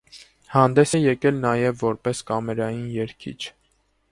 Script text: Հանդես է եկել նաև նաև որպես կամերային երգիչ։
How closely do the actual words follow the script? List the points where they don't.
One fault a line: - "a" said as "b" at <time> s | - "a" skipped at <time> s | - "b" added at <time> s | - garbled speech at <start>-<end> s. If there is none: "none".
- "նաև" skipped at 1.8 s